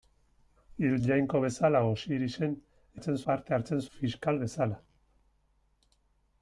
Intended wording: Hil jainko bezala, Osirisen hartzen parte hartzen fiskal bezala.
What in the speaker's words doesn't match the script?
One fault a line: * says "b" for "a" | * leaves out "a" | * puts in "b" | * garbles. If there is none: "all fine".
all fine